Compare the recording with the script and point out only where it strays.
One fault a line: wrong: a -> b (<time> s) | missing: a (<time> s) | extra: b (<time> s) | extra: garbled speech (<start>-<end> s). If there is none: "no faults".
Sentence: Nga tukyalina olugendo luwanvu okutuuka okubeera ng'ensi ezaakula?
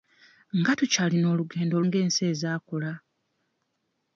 missing: luwanvu okutuuka okubeera (1.8 s)